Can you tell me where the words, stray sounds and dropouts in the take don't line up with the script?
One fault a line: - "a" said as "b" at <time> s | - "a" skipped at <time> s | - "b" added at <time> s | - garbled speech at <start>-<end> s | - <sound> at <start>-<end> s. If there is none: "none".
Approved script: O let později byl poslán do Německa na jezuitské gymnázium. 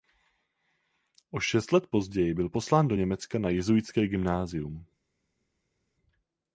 - "šest" added at 1.4 s